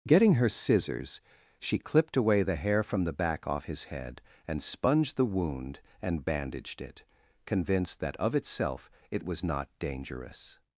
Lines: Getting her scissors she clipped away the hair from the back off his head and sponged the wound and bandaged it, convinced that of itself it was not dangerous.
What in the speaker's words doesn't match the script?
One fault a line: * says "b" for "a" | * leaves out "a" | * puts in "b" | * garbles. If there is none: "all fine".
all fine